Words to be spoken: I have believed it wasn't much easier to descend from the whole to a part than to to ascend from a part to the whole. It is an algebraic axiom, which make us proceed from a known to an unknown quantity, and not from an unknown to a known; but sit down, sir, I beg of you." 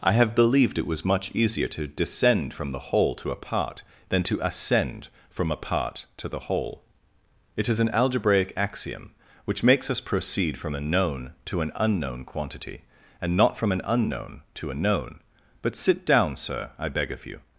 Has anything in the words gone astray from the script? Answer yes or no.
yes